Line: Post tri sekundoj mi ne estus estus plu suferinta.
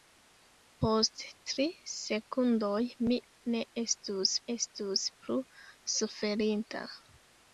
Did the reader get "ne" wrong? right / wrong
right